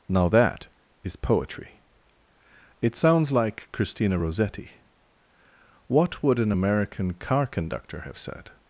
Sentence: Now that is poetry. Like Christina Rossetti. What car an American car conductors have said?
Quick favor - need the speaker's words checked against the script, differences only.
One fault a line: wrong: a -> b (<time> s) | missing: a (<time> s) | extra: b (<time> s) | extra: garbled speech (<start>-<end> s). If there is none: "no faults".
extra: It sounds (2.8 s)
wrong: car -> would (6.2 s)
wrong: conductors -> conductor (7.5 s)